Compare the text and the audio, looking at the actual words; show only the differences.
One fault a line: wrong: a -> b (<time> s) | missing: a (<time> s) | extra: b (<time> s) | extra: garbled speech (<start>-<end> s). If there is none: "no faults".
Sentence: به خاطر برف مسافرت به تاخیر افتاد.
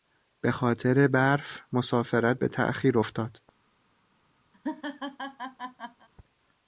no faults